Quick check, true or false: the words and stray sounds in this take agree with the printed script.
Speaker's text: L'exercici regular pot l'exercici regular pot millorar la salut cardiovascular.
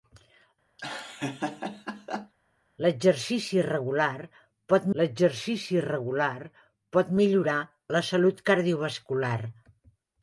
false